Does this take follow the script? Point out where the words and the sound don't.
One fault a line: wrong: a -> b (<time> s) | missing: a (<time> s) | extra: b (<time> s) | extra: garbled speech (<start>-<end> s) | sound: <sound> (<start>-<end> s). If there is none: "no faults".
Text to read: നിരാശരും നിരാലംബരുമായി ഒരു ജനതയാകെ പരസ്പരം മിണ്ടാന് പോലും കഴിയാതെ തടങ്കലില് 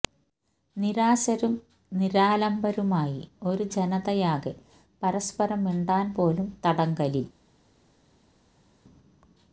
missing: കഴിയാതെ (6.5 s)